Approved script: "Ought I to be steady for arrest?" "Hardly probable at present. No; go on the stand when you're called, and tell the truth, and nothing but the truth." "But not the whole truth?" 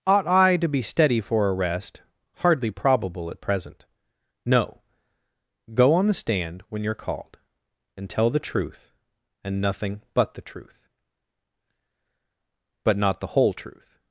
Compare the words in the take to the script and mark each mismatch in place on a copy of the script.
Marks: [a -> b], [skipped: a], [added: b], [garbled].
"Ought I to be steady for arrest?" "Hardly probable at present. No; go on the stand when you're called, and tell the truth, and nothing but the truth." "But not the whole truth?"